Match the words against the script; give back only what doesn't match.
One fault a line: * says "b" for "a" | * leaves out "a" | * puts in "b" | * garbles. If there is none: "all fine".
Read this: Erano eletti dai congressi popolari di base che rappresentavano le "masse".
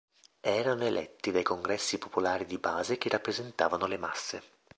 all fine